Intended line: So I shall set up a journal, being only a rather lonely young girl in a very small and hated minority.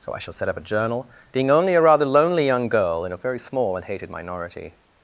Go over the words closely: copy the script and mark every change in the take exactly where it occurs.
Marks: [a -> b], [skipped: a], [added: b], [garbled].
So I shall set up a journal, being only a rather lonely young girl in a very small and hated minority.